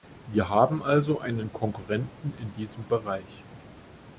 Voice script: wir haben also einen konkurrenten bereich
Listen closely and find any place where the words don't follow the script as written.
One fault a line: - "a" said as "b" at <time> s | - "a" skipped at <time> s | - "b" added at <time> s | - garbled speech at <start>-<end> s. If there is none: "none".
- "in diesem" added at 2.4 s